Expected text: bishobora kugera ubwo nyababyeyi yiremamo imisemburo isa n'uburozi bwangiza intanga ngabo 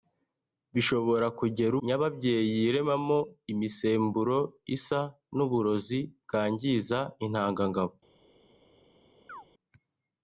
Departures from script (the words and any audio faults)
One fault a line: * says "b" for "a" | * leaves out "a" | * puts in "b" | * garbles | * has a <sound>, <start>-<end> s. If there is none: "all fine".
* leaves out "ubwo"
* has a chirp, 9.3-9.4 s